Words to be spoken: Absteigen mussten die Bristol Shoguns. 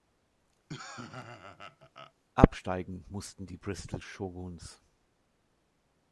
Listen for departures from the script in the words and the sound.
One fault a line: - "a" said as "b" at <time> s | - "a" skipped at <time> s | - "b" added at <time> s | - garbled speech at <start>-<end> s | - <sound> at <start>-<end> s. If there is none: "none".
- laugh at 0.7-2.1 s